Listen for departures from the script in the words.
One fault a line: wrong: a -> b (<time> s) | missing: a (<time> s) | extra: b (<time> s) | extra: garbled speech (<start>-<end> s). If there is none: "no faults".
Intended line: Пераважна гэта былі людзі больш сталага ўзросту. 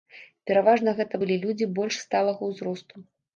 no faults